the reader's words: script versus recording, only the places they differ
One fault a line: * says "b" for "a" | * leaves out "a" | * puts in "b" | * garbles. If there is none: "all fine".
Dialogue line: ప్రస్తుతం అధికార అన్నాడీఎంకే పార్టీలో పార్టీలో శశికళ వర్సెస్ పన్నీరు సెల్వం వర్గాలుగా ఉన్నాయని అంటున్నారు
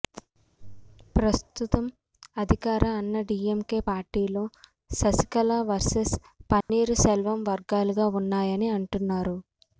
* leaves out "పార్టీలో"